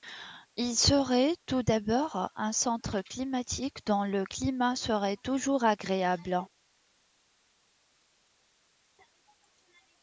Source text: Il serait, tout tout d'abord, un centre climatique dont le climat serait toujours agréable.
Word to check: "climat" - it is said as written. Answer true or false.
true